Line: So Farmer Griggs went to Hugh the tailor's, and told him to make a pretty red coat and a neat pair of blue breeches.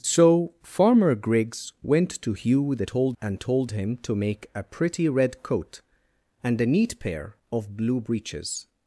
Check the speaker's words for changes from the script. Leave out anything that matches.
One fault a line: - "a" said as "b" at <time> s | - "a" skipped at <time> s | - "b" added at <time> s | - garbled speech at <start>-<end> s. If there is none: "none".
- "tailor's" said as "told" at 2.9 s